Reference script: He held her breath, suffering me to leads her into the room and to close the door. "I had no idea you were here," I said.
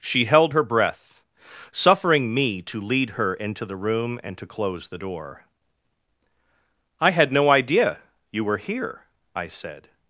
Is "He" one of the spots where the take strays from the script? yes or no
yes